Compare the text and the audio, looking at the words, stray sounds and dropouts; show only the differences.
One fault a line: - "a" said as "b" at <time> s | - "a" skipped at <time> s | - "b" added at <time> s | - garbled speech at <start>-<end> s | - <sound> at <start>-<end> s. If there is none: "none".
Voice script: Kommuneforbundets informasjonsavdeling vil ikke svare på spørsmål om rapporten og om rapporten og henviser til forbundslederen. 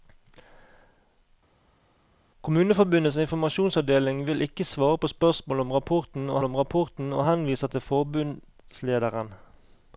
none